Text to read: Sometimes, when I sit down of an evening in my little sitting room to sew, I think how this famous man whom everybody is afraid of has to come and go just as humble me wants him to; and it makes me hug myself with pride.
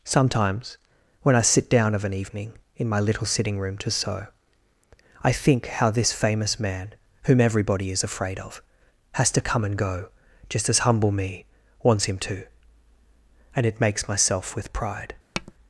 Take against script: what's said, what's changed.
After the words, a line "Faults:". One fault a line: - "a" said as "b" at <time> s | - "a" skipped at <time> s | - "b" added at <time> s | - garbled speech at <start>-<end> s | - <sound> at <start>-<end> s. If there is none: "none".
Sometimes, when I sit down of an evening in my little sitting room to sew, I think how this famous man whom everybody is afraid of has to come and go just as humble me wants him to; and it makes myself with pride.
Faults:
- "me hug" skipped at 14.1 s
- tap at 15.3-15.5 s